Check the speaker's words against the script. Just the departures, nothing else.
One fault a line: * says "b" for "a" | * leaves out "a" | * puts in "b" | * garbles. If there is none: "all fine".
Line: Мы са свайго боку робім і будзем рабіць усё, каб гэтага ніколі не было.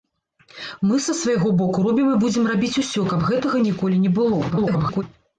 * garbles